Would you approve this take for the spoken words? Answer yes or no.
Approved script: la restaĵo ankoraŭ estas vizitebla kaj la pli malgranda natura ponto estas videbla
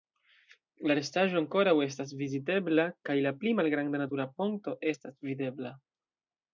yes